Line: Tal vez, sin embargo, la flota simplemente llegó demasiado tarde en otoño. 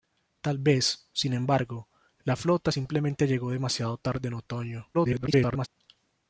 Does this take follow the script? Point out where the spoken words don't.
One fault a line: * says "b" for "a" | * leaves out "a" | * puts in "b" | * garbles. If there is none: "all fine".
* garbles